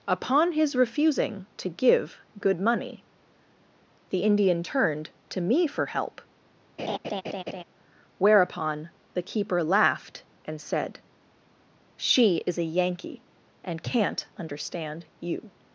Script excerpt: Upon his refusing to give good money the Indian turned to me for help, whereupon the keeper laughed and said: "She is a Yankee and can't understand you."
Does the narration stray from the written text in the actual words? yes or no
no